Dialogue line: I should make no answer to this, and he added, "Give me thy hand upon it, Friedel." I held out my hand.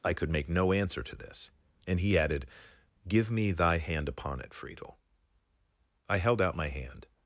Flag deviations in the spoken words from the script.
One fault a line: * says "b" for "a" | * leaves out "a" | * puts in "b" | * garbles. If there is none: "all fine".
* says "could" for "should"